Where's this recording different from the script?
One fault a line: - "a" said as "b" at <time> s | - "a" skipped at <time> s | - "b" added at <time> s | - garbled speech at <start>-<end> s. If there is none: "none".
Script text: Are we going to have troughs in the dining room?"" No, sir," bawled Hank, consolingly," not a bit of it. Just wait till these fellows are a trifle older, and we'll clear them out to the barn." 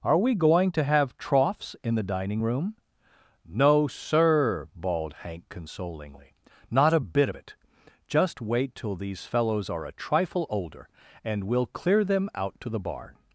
none